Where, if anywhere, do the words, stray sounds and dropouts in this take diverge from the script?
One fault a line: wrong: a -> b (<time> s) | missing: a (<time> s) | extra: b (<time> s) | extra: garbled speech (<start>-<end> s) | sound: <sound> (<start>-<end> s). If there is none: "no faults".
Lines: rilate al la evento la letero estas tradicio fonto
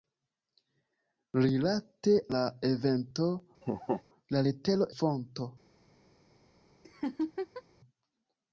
missing: al (2.1 s)
sound: laugh (3.6-4.0 s)
missing: estas tradicio (4.9 s)
sound: laugh (6.8-7.6 s)